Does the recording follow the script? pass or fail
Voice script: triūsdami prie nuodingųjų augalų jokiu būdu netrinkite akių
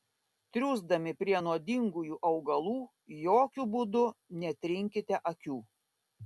pass